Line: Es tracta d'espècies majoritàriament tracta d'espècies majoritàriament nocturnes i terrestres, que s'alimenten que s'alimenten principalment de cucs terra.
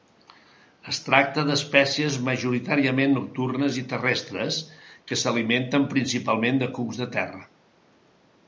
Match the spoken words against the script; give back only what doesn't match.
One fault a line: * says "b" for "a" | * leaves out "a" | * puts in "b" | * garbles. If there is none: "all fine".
* leaves out "tracta d'espècies majoritàriament"
* leaves out "que s'alimenten"
* puts in "de"